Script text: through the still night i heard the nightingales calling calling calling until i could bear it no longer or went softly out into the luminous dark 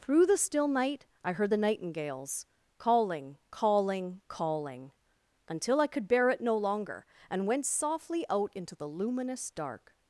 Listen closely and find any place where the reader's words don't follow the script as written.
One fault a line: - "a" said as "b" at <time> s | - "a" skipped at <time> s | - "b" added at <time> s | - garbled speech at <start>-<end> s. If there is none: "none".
- "or" said as "and" at 7.3 s